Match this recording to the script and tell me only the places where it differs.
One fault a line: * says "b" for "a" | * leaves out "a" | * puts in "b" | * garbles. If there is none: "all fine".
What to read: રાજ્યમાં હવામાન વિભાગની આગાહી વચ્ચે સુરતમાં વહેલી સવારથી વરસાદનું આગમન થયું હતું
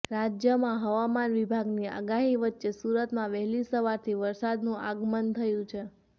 * says "છે" for "હતું"